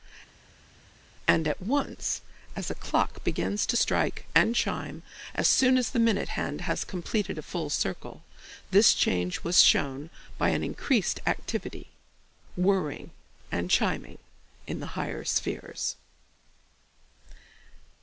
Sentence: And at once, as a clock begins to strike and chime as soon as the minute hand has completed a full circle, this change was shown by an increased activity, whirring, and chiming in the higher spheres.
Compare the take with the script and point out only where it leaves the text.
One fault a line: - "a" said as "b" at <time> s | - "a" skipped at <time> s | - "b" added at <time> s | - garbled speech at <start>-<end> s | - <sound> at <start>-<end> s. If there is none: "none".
none